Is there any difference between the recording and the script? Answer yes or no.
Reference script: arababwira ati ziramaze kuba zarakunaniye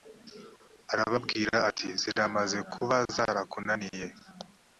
no